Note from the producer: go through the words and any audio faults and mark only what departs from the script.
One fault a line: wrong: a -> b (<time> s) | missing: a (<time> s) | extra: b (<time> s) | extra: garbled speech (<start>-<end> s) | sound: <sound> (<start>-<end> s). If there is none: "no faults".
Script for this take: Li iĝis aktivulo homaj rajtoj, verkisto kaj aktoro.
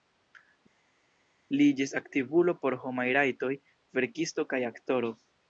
extra: por (2.6 s)